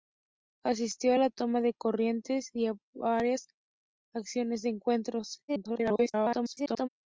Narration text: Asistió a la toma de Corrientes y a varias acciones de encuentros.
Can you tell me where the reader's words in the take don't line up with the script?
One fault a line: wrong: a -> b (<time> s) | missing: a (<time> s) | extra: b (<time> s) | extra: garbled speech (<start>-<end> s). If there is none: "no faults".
extra: garbled speech (5.5-6.9 s)